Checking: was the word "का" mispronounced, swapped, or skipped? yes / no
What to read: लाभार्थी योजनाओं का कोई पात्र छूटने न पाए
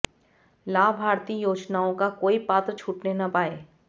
no